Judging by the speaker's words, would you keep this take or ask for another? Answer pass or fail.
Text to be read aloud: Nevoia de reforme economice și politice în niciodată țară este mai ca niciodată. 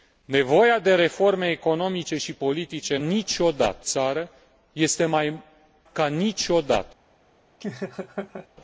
pass